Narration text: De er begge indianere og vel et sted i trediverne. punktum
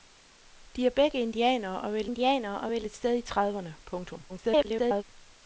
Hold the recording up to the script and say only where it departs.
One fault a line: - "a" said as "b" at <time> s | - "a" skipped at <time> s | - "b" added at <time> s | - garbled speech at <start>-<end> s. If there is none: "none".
- "indianere og vel" added at 2.0 s
- garbled speech at 4.3-5.0 s